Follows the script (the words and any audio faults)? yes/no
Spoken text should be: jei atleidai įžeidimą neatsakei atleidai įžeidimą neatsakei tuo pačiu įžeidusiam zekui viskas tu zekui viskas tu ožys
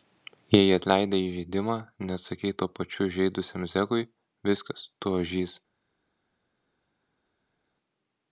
no